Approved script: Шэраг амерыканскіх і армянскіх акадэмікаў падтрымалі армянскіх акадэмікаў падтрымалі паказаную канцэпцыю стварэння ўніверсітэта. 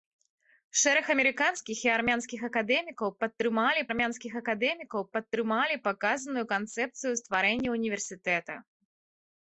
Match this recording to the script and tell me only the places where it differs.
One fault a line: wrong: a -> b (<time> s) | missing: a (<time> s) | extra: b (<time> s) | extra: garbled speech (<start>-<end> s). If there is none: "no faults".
no faults